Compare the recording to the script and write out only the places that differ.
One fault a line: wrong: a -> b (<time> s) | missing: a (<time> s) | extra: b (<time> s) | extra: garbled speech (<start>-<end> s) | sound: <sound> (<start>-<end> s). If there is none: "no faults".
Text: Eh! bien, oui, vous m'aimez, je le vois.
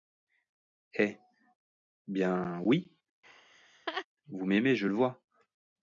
sound: laugh (3.2-4.1 s)